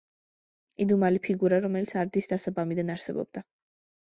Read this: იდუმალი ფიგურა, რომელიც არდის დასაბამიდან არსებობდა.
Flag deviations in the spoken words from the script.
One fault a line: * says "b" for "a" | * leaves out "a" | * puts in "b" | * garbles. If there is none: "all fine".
all fine